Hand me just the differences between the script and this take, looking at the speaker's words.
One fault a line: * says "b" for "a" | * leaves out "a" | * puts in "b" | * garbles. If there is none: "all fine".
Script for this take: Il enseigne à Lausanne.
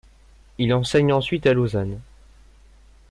* puts in "ensuite"